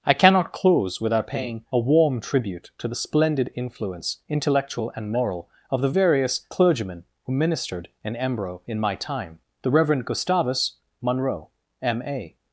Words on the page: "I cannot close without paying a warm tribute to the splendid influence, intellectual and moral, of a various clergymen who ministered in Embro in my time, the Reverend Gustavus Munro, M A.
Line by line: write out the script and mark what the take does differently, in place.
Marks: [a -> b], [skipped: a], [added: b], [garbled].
"I cannot close without paying a warm tribute to the splendid influence, intellectual and moral, of [a -> the] various clergymen who ministered in Embro in my time, the Reverend Gustavus Munro, M A.